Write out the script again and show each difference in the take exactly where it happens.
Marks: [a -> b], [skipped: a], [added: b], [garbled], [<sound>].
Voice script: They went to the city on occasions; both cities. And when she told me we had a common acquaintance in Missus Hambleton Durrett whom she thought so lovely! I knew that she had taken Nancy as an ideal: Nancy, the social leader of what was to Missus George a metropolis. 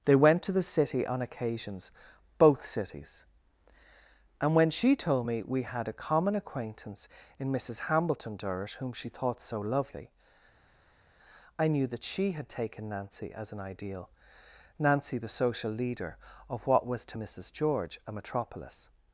They went to the city on occasions; both cities. And when she told me we had a common acquaintance in Missus Hambleton Durrett whom she thought so lovely! I knew that she had taken Nancy as an ideal: Nancy, the social leader of what was to Missus George a metropolis.